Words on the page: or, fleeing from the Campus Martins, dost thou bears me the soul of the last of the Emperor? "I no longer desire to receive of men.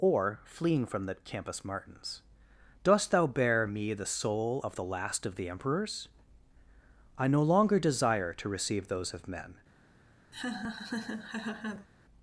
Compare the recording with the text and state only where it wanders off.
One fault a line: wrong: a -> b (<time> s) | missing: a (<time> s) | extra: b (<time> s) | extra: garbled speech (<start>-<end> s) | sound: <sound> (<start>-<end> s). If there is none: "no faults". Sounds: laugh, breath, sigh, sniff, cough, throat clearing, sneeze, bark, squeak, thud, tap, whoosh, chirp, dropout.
wrong: bears -> bear (3.3 s)
wrong: Emperor -> Emperors (5.5 s)
extra: those (8.9 s)
sound: laugh (10.3-11.9 s)